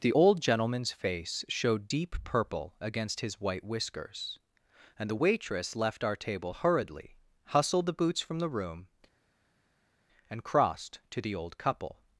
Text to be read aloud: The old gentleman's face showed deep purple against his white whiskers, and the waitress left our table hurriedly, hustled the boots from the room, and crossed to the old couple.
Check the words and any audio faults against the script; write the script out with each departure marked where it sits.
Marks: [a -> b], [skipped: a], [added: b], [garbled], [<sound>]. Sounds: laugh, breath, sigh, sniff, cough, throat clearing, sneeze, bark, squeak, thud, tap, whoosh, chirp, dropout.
The old gentleman's face showed deep purple against his white whiskers, and the waitress left our table hurriedly, hustled the boots from the room, and crossed to the old couple.